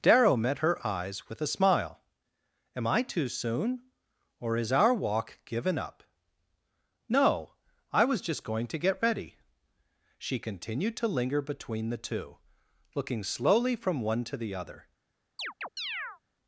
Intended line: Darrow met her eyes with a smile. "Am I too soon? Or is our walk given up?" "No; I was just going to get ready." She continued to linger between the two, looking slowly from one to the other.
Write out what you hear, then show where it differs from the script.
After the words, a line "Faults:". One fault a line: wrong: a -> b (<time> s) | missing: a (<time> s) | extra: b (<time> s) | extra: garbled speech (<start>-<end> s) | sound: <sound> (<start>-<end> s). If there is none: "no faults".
Darrow met her eyes with a smile. "Am I too soon? Or is our walk given up?" "No; I was just going to get ready." She continued to linger between the two, looking slowly from one to the other.
Faults:
sound: chirp (15.4-16.2 s)